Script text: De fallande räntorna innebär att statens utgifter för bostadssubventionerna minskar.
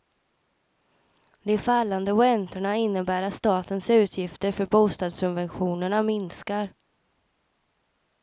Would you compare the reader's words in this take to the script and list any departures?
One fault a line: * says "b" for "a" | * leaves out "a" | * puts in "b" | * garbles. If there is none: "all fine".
all fine